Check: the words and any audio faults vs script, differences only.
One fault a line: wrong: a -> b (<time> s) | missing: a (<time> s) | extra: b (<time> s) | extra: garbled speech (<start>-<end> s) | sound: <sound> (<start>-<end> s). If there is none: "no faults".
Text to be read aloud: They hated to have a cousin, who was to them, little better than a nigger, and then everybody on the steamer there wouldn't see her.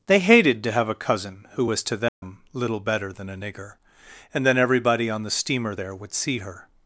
sound: dropout (2.1-2.2 s)
wrong: wouldn't -> would (5.9 s)